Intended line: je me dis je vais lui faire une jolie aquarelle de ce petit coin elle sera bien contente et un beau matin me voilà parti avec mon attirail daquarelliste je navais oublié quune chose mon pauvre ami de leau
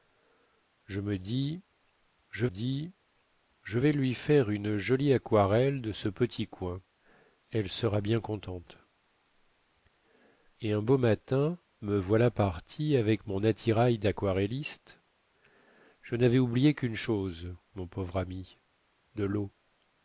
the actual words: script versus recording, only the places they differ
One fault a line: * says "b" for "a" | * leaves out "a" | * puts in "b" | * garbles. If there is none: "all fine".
* puts in "dis je"